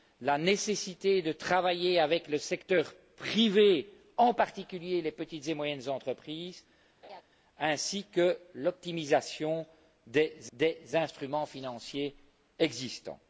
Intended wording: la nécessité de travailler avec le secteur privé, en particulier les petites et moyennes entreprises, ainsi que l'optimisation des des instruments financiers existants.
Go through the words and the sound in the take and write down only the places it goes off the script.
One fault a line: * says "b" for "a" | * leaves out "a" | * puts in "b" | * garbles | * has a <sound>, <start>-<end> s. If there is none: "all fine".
* has a laugh, 7.0-7.2 s